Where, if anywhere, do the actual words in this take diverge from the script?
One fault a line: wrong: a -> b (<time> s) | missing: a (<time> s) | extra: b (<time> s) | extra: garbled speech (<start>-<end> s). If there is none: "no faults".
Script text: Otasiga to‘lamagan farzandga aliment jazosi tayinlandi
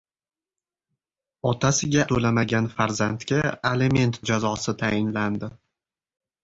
no faults